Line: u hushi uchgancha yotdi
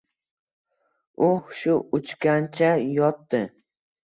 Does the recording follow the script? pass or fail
pass